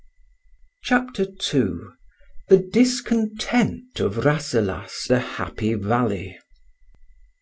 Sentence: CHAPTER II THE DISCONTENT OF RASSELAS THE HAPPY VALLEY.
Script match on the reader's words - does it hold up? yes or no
yes